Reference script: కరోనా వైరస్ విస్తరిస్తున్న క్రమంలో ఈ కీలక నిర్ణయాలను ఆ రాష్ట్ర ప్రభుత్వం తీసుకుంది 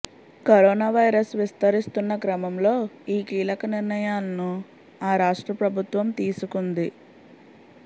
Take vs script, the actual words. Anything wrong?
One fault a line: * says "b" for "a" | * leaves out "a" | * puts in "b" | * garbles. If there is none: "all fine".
all fine